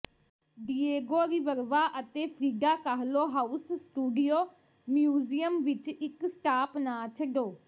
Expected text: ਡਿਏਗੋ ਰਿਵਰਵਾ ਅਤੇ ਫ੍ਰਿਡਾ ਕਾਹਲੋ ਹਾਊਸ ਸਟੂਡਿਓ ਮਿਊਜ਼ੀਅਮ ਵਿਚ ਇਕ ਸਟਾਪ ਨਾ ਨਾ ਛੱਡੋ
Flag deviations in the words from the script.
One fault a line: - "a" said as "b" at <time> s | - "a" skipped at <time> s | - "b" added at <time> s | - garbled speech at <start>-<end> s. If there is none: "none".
- "ਨਾ" skipped at 7.1 s